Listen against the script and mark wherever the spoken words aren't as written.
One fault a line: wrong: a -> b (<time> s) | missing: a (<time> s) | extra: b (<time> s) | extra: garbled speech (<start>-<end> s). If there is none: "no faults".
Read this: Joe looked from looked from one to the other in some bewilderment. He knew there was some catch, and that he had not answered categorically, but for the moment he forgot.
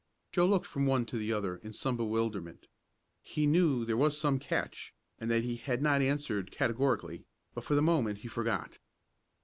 missing: looked from (0.9 s)